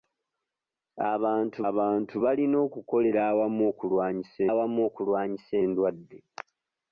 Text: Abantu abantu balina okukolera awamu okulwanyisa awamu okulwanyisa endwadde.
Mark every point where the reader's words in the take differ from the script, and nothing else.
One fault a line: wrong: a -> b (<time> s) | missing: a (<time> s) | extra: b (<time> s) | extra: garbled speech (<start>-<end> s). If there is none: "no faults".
no faults